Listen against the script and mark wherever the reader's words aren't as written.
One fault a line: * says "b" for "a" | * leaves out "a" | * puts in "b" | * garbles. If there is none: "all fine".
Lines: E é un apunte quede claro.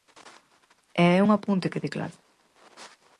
all fine